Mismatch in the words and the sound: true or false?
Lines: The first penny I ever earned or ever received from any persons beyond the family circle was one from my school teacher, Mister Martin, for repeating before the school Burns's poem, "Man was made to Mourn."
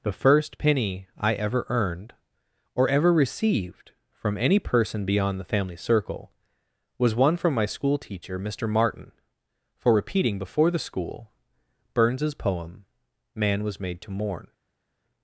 true